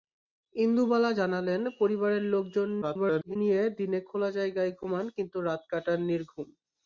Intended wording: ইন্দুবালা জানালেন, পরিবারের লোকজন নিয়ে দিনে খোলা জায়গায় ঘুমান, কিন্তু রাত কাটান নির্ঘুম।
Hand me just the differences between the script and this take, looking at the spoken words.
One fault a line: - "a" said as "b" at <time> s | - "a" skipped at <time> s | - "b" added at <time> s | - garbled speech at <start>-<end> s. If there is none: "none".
- garbled speech at 2.8-3.4 s